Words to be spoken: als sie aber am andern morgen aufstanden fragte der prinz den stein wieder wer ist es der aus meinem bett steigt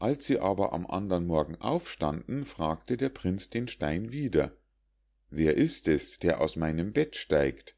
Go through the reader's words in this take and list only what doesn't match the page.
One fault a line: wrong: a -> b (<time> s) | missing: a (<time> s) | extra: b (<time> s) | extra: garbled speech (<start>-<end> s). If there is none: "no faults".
no faults